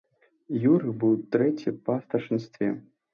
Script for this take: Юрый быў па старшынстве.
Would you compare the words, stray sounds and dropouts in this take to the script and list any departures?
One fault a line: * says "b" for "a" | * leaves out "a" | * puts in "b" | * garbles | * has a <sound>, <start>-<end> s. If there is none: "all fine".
* puts in "трэці"